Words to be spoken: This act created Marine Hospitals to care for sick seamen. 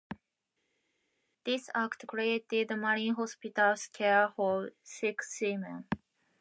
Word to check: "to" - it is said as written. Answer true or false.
false